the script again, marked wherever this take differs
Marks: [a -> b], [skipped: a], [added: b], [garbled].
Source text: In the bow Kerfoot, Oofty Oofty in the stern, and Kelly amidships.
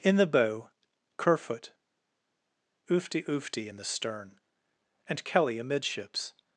In the bow Kerfoot, Oofty Oofty in the stern, and Kelly amidships.